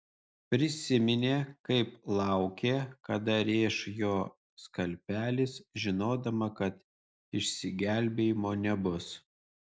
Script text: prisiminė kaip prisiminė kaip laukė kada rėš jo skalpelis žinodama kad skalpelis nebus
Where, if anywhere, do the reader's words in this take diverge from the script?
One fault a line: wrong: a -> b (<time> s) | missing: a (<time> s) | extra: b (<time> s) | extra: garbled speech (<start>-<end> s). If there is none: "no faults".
missing: prisiminė kaip (1.9 s)
wrong: skalpelis -> išsigelbėjimo (7.4 s)